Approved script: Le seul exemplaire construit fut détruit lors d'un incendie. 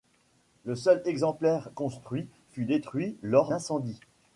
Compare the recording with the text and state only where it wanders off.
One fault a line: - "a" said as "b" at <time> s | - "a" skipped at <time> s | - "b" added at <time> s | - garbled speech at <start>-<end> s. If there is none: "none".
- "d'un" skipped at 3.5 s